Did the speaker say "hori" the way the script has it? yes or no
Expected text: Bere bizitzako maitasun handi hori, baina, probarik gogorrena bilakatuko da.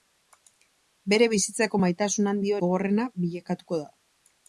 no